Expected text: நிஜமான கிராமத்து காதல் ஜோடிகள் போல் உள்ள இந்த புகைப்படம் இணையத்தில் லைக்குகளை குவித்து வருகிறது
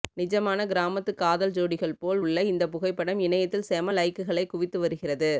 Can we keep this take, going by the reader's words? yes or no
no